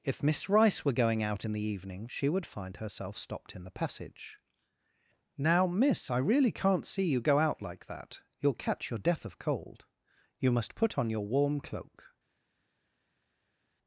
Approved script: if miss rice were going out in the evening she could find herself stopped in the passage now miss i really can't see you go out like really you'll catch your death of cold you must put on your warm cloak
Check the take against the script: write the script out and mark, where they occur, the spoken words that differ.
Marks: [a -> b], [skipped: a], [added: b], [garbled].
if miss rice were going out in the evening she [could -> would] find herself stopped in the passage now miss i really can't see you go out like [really -> that] you'll catch your death of cold you must put on your warm cloak